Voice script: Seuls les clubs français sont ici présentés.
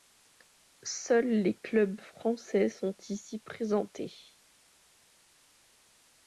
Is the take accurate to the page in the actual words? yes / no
yes